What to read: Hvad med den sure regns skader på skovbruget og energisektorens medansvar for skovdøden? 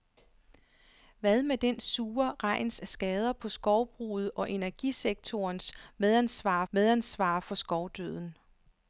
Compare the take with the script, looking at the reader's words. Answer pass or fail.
fail